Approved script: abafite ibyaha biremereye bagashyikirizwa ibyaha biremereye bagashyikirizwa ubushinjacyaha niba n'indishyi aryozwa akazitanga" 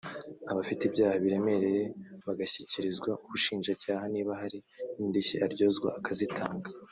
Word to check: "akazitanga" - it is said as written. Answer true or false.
true